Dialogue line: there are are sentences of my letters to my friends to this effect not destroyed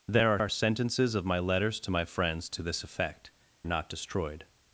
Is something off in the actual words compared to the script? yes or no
no